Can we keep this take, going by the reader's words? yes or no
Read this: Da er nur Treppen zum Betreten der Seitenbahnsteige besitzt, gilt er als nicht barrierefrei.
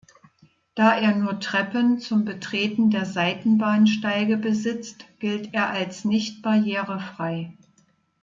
yes